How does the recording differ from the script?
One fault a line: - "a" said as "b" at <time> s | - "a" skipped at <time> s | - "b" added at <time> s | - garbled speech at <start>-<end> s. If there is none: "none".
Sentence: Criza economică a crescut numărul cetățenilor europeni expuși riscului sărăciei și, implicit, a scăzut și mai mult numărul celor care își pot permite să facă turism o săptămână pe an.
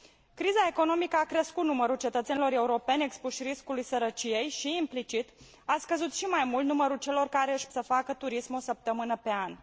- "pot permite" skipped at 7.7 s